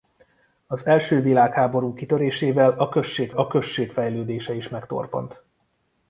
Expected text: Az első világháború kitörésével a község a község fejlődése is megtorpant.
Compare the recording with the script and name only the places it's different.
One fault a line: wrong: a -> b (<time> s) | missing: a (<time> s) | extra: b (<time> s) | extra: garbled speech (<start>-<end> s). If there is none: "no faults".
no faults